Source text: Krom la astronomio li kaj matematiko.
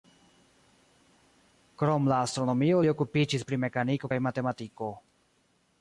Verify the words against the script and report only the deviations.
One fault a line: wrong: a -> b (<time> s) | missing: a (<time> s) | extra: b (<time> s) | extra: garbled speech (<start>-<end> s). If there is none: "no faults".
extra: okupiĝis pri mekaniko (2.9 s)